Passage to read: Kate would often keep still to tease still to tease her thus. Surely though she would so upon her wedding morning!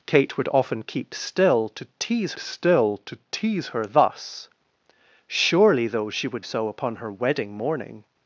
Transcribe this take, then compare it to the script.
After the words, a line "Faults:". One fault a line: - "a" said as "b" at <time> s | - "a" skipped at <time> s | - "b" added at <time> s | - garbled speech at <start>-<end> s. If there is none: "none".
Kate would often keep still to tease still to tease her thus. Surely though she would so upon her wedding morning!
Faults:
none